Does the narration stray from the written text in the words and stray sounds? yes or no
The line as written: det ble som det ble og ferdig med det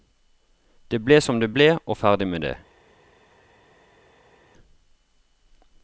no